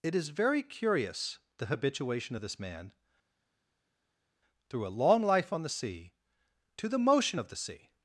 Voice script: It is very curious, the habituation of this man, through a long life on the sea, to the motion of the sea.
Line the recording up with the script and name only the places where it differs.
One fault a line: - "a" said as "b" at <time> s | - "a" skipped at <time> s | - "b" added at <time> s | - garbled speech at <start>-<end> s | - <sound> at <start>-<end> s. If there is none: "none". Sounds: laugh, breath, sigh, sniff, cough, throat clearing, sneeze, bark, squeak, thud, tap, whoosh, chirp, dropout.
none